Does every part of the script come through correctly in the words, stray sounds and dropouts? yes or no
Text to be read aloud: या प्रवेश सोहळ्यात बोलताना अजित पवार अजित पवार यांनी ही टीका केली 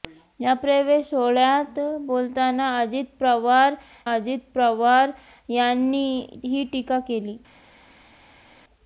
yes